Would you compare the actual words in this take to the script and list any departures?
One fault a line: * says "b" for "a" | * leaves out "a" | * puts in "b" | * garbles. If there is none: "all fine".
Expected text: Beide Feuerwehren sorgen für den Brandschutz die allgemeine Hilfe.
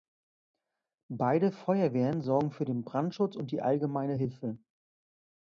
* puts in "und"